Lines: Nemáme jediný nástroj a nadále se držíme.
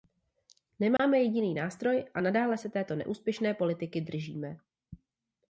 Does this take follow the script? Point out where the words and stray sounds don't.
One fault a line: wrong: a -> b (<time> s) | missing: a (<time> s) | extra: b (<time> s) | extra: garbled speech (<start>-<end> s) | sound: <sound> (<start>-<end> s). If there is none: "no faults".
sound: dropout (1.0-1.0 s)
extra: této neúspěšné politiky (2.7 s)